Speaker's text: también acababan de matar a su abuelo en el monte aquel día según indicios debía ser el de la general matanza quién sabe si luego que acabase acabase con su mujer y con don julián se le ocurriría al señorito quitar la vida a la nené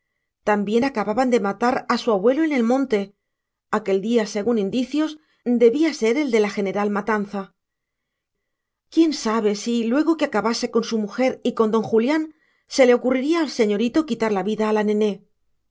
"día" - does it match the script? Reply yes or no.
yes